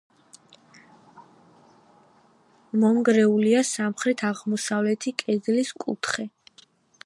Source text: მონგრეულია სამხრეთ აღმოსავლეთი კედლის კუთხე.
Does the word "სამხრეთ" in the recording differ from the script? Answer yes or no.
no